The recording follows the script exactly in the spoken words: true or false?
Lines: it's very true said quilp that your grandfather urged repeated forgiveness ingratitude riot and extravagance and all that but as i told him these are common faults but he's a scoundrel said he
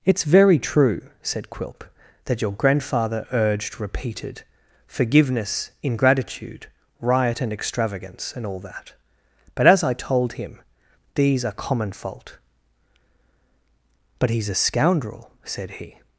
false